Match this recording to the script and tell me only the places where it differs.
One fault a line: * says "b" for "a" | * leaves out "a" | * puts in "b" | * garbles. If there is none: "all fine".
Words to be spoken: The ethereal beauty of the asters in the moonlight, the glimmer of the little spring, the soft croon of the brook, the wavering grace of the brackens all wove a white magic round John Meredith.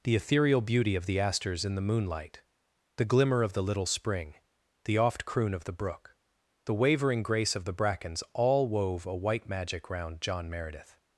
* says "oft" for "soft"